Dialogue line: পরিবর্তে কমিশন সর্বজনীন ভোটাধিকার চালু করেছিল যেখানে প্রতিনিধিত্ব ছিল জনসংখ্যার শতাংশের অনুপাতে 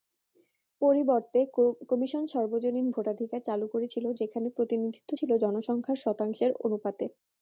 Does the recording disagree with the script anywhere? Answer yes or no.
no